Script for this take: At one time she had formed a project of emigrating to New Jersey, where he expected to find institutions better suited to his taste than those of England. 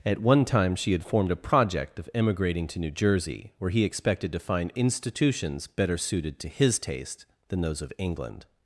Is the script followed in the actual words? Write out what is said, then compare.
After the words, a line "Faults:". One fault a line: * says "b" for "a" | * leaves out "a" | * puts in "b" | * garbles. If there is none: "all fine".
At one time she had formed a project of emigrating to New Jersey, where he expected to find institutions better suited to his taste than those of England.
Faults:
all fine